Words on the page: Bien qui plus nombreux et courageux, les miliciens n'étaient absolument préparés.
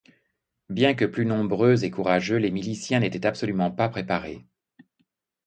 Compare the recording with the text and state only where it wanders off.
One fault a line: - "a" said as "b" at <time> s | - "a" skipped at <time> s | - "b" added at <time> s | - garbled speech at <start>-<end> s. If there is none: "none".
- "qui" said as "que" at 0.9 s
- "pas" added at 3.7 s